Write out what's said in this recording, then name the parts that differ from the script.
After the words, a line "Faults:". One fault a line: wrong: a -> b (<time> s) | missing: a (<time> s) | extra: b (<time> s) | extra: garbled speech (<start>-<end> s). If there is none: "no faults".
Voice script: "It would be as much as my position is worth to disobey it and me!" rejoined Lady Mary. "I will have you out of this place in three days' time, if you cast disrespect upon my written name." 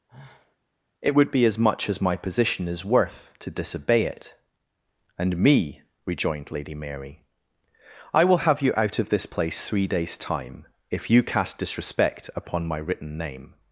"It would be as much as my position is worth to disobey it and me!" rejoined Lady Mary. "I will have you out of this place three days' time, if you cast disrespect upon my written name."
Faults:
missing: in (9.7 s)